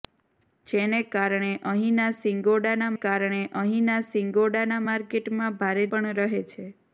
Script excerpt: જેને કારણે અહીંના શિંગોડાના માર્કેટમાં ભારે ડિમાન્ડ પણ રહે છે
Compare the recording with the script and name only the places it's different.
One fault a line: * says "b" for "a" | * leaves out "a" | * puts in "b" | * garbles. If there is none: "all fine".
* puts in "કારણે અહીંના શિંગોડાના"
* leaves out "ડિમાન્ડ"